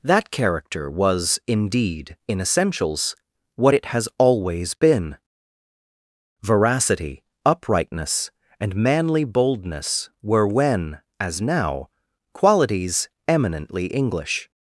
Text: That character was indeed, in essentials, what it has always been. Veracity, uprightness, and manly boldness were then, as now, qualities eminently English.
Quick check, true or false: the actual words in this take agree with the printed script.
false